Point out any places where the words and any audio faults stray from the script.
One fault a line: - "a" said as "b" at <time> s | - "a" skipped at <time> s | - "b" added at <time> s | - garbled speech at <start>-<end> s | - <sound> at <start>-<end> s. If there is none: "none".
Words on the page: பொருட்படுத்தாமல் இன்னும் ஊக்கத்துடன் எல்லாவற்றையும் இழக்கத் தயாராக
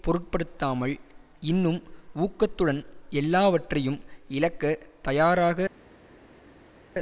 none